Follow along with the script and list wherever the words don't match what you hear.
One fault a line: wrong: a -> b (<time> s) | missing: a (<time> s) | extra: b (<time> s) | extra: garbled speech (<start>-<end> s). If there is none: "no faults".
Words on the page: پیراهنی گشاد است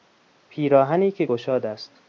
extra: که (1.1 s)